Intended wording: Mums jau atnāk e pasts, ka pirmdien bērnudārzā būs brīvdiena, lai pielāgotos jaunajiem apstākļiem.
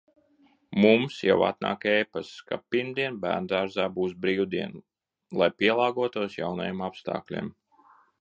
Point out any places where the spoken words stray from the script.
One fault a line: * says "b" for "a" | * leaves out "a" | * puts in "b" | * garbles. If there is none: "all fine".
all fine